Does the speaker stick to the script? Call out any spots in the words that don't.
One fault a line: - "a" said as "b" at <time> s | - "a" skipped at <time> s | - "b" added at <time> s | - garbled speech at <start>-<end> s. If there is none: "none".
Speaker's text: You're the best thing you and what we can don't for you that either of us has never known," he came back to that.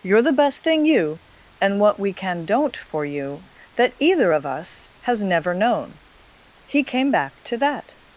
none